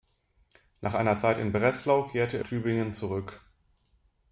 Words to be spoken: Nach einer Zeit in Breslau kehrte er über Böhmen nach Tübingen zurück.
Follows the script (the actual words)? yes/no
no